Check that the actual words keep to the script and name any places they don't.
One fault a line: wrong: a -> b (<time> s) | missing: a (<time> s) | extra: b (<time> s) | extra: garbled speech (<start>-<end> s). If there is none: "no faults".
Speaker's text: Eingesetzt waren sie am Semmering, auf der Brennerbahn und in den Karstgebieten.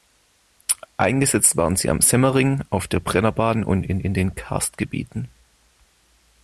extra: in (4.0 s)